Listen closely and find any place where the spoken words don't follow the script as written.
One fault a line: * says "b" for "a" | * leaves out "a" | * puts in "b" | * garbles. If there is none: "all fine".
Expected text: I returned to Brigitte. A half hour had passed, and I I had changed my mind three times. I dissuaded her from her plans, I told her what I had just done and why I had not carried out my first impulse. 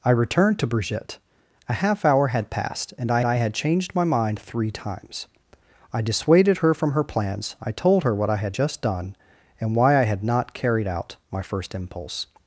all fine